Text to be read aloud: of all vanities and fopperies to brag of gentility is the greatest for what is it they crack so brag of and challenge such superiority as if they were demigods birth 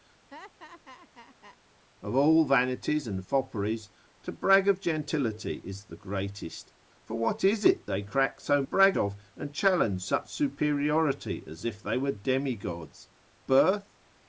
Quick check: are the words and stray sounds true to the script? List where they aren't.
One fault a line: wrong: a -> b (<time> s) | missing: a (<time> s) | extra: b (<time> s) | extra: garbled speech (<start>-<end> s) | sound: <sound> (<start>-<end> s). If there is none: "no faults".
sound: laugh (0.3-1.6 s)